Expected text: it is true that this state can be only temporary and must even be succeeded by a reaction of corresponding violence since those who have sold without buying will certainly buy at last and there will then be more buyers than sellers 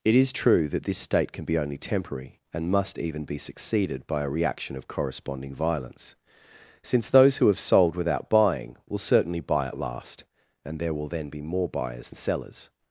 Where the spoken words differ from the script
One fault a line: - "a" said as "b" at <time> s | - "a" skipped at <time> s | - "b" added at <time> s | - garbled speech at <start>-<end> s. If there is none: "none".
- "than" skipped at 12.1 s